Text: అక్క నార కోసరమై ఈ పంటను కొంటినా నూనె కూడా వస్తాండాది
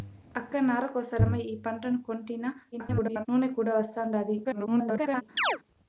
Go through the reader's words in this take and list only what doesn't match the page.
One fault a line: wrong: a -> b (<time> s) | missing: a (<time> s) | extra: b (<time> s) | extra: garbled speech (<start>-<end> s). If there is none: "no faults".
extra: garbled speech (2.7-3.3 s)
extra: garbled speech (4.4-5.2 s)